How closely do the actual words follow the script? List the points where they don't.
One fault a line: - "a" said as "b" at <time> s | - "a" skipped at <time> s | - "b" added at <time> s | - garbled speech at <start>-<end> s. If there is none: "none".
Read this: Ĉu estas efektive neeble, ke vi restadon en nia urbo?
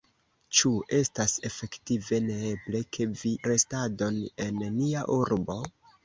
none